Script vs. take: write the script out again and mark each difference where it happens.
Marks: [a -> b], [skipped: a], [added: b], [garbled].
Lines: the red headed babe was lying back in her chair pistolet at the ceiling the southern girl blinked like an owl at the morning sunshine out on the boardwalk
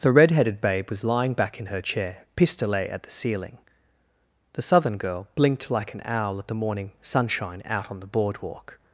the red headed babe was lying back in her chair pistolet at the ceiling the southern girl blinked like an owl at the morning sunshine out on the boardwalk